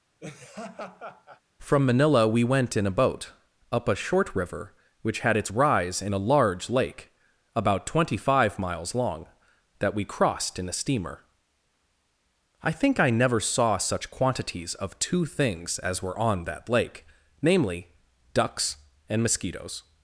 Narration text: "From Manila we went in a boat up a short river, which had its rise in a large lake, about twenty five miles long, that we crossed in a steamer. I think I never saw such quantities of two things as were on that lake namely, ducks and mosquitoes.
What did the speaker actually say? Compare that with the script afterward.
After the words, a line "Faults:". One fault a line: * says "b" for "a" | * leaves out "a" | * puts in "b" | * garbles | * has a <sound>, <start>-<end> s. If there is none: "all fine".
"From Manila we went in a boat up a short river, which had its rise in a large lake, about twenty five miles long, that we crossed in a steamer. I think I never saw such quantities of two things as were on that lake namely, ducks and mosquitoes.
Faults:
* has a laugh, 0.2-1.4 s